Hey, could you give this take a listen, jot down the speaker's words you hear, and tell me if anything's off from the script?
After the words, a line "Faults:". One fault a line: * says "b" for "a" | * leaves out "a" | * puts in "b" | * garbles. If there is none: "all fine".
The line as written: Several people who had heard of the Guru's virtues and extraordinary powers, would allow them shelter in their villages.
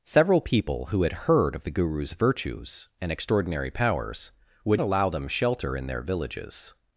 Several people who had heard of the Guru's virtues and extraordinary powers, would allow them shelter in their villages.
Faults:
all fine